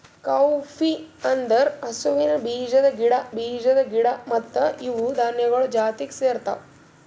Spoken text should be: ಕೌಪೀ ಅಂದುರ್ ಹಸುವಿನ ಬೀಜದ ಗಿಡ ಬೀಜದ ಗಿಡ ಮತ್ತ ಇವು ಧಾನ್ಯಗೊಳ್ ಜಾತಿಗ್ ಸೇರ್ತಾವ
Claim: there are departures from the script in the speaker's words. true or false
false